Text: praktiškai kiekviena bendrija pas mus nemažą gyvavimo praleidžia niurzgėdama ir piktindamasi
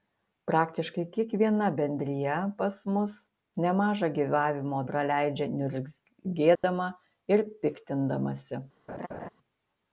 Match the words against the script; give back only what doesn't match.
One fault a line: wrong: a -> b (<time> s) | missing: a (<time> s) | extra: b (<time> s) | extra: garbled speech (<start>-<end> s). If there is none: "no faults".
no faults